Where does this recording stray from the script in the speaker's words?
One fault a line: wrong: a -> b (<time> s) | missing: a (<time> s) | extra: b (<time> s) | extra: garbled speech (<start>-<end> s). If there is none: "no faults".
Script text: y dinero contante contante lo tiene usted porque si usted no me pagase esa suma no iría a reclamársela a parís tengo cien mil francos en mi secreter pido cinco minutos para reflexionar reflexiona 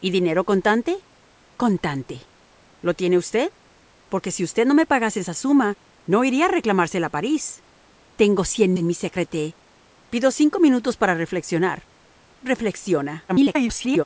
missing: mil francos (8.8 s)
extra: garbled speech (13.3-14.0 s)